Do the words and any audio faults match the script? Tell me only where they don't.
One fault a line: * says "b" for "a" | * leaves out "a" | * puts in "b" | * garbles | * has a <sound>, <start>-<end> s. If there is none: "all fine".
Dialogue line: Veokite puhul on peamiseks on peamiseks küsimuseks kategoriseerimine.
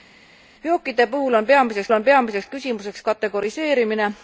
all fine